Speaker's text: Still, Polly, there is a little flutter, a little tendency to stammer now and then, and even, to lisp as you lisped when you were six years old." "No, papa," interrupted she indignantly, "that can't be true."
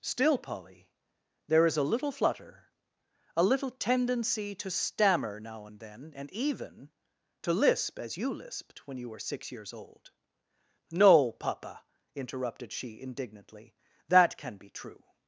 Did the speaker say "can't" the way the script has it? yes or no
no